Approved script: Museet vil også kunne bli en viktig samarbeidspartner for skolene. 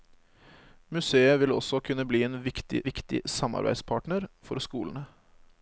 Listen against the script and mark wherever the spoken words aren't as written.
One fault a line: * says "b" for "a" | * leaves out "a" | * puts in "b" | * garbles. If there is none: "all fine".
* puts in "viktig"